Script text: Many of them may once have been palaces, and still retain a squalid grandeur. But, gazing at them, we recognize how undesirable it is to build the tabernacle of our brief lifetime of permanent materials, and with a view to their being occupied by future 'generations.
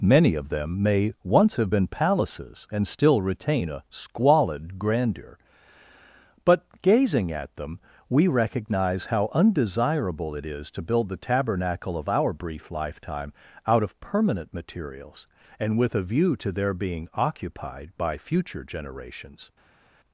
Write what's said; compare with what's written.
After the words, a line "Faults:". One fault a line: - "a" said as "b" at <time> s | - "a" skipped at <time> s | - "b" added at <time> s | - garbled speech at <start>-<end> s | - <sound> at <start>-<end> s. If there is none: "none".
Many of them may once have been palaces, and still retain a squalid grandeur. But, gazing at them, we recognize how undesirable it is to build the tabernacle of our brief lifetime out of permanent materials, and with a view to their being occupied by future 'generations.
Faults:
- "out" added at 13.7 s